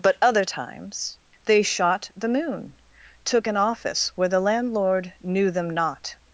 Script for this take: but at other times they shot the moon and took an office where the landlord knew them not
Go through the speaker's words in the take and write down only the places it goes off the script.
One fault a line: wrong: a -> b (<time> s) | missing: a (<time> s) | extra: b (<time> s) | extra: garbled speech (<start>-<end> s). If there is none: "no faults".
missing: at (0.2 s)
missing: and (2.7 s)